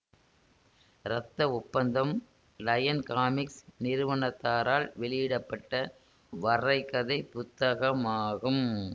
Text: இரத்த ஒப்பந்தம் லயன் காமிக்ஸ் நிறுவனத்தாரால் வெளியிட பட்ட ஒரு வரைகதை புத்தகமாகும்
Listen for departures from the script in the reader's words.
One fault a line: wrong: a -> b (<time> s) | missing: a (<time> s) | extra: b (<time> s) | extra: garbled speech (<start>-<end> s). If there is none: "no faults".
missing: ஒரு (5.8 s)